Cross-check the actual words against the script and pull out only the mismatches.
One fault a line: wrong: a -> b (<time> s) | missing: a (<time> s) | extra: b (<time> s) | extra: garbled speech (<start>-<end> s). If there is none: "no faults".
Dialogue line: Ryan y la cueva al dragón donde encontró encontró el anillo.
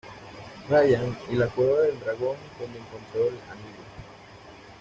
wrong: al -> del (1.8 s)
missing: encontró (3.3 s)